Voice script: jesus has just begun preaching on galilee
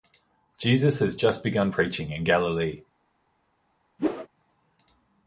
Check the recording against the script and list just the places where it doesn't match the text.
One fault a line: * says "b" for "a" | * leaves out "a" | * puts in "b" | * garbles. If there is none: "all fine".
* says "in" for "on"